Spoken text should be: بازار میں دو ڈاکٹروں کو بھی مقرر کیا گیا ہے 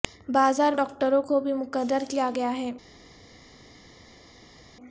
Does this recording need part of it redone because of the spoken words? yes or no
yes